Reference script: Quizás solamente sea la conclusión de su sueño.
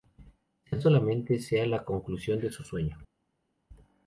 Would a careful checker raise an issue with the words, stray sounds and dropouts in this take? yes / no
no